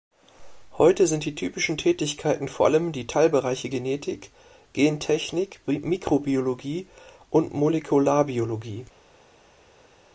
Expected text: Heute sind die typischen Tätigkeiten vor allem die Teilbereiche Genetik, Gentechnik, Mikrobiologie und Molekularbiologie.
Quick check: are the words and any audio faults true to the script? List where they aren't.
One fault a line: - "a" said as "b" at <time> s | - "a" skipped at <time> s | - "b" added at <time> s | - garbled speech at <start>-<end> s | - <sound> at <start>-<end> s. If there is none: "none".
none